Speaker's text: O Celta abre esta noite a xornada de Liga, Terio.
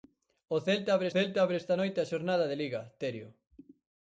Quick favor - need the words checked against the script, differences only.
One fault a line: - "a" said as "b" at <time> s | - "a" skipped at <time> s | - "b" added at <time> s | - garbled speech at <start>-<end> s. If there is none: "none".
- "Celta abre" added at 1.1 s